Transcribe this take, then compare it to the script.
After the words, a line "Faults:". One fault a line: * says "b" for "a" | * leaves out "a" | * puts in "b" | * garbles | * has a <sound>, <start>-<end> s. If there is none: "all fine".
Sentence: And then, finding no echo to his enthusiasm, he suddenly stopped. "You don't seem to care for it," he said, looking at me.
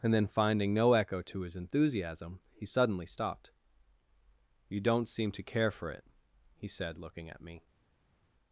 And then, finding no echo to his enthusiasm, he suddenly stopped. "You don't seem to care for it," he said, looking at me.
Faults:
all fine